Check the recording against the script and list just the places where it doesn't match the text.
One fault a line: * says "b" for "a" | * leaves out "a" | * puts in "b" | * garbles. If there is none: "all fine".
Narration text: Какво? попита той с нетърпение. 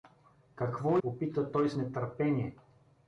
all fine